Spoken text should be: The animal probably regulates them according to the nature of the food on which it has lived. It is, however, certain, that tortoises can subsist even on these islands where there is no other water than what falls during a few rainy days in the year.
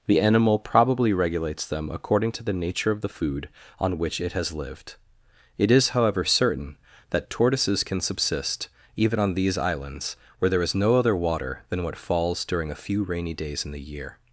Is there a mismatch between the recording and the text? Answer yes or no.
no